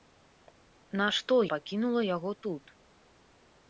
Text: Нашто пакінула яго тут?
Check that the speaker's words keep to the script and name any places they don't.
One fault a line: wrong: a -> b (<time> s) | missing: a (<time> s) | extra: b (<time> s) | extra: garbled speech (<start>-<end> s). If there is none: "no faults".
no faults